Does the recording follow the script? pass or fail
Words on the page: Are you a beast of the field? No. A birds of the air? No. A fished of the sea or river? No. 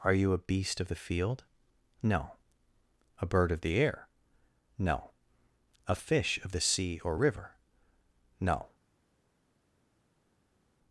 fail